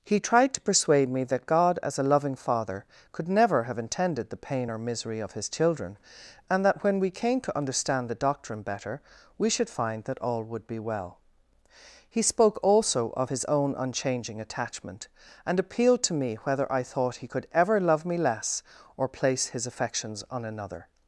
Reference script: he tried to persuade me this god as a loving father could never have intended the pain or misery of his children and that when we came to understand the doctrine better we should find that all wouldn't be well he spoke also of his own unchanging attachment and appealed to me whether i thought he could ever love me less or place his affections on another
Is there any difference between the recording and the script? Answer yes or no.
yes